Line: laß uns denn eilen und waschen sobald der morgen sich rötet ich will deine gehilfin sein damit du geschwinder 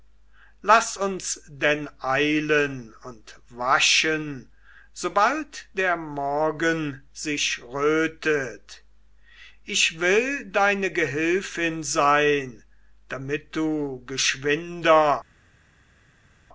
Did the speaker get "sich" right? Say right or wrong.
right